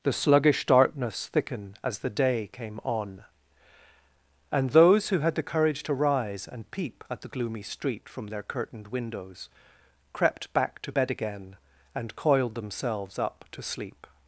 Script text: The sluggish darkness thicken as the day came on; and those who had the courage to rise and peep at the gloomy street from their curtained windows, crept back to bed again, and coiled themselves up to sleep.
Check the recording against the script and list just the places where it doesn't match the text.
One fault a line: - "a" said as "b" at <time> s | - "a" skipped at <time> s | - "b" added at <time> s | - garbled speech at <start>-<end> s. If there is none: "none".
none